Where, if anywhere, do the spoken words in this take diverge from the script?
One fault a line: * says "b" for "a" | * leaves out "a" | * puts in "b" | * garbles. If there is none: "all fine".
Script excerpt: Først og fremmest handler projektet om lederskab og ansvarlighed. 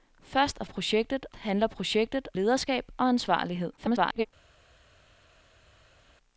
* says "projektet" for "fremmest"
* leaves out "om"
* garbles